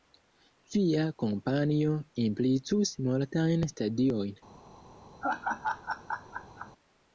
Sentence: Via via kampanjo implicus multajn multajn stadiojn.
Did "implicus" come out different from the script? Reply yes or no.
no